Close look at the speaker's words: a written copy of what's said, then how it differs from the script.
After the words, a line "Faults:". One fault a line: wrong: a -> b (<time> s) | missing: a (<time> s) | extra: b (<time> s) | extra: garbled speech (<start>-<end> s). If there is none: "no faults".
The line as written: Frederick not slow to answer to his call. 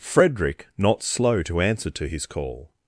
Frederick not slow to answer to his call.
Faults:
no faults